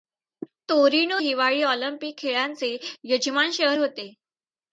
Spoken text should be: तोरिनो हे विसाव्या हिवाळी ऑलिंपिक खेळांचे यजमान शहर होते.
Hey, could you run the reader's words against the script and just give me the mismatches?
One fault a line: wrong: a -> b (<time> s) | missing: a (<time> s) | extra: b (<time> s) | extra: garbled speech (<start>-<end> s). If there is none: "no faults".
missing: हे विसाव्या (1.2 s)